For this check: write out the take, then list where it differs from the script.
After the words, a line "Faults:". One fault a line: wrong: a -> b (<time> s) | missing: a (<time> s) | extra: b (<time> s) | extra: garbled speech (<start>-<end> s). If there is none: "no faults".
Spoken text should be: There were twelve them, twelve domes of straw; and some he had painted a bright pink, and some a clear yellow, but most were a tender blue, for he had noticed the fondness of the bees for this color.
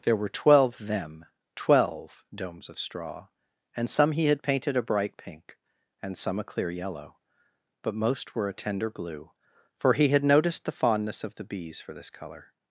There were twelve them, twelve domes of straw; and some he had painted a bright pink, and some a clear yellow, but most were a tender blue, for he had noticed the fondness of the bees for this color.
Faults:
no faults